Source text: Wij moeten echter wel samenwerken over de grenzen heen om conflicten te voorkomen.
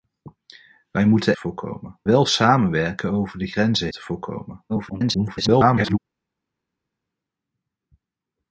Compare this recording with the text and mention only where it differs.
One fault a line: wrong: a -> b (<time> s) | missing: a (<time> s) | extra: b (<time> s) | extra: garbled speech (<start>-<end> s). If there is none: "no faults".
wrong: echter -> voorkomen (1.4 s)
missing: heen om conflicten (3.9 s)
extra: garbled speech (4.7-6.0 s)